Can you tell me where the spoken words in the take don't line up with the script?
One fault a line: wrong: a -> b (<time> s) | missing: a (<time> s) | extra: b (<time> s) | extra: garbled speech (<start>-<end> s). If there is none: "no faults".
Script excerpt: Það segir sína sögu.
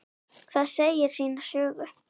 no faults